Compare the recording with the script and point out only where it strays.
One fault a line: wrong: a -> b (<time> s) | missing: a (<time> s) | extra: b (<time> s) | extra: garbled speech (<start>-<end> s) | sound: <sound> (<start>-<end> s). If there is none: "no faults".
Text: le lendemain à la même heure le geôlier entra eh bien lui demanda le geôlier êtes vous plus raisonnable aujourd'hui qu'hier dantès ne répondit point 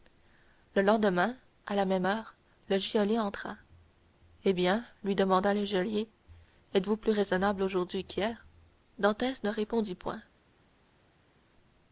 no faults